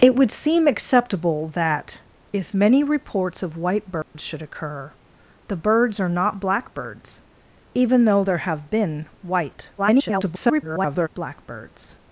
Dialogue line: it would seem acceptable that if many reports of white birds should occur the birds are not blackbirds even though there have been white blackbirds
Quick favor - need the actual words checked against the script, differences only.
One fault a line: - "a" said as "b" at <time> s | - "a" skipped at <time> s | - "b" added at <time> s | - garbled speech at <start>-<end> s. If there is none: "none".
- garbled speech at 9.8-11.1 s